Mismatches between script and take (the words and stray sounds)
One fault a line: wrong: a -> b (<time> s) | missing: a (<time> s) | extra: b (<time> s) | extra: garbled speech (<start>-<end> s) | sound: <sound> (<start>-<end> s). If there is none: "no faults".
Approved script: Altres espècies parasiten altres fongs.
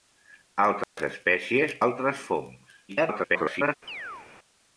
sound: dropout (0.8-1.0 s)
missing: parasiten (1.8 s)
extra: garbled speech (2.9-3.7 s)
sound: chirp (3.9-4.3 s)